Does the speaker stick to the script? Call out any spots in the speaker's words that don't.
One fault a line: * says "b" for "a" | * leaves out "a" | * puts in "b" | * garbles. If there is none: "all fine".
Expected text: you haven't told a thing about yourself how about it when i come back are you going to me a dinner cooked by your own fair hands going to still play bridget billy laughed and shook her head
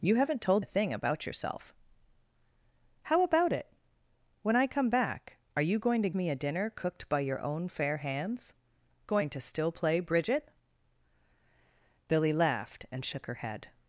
all fine